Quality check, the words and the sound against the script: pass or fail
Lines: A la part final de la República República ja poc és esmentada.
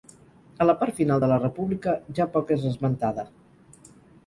fail